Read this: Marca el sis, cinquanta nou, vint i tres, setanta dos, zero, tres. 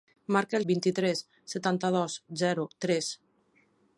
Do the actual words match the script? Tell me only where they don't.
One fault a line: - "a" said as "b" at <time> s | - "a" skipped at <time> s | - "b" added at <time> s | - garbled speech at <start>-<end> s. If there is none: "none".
- "sis cinquanta nou" skipped at 0.6 s